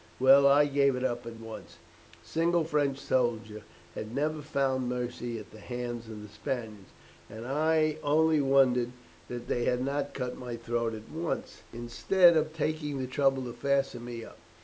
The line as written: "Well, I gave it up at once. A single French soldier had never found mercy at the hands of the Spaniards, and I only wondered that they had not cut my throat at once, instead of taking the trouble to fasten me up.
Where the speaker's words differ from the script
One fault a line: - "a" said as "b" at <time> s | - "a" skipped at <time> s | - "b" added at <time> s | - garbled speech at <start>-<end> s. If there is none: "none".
none